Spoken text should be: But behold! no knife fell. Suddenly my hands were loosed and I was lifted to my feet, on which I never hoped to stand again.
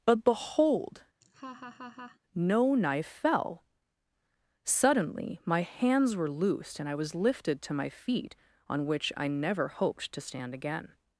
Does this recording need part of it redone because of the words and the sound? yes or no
yes